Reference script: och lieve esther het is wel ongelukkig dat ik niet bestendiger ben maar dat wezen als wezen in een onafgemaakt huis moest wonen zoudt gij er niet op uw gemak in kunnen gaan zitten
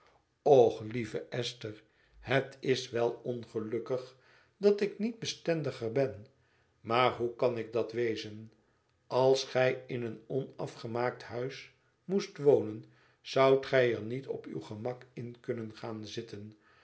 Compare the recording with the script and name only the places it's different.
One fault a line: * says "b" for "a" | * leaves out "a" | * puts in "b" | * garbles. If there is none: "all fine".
* puts in "hoe kan ik"
* says "gij" for "wezen"